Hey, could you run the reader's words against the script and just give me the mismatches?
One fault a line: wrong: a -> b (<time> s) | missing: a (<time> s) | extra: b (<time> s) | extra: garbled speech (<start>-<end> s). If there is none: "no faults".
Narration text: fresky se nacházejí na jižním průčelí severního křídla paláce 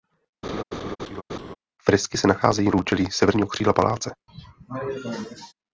missing: na jižním (2.7 s)